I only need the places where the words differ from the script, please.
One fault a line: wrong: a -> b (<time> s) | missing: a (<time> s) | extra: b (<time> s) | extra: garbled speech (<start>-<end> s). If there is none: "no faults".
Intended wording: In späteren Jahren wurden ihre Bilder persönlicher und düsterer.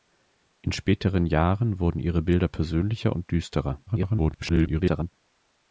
extra: garbled speech (3.9-5.1 s)